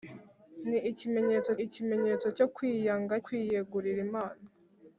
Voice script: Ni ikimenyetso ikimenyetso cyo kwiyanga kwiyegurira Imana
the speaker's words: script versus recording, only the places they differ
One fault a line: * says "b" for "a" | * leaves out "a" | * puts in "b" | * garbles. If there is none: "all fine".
all fine